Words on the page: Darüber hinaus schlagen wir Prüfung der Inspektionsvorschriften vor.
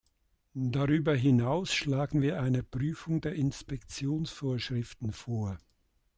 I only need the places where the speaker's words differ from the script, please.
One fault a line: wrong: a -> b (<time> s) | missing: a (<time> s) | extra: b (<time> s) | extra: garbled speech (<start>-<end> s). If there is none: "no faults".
extra: eine (2.4 s)